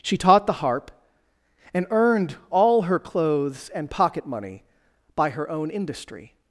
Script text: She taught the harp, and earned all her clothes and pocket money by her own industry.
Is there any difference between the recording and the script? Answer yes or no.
no